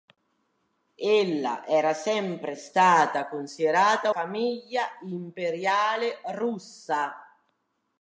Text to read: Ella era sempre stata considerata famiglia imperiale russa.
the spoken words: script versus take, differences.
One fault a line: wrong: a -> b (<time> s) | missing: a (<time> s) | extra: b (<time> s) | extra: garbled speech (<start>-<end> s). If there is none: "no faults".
no faults